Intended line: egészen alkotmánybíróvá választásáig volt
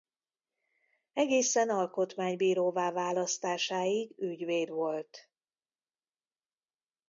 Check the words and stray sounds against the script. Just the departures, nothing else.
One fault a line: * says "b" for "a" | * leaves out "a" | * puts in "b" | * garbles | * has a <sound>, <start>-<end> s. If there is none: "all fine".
* puts in "ügyvéd"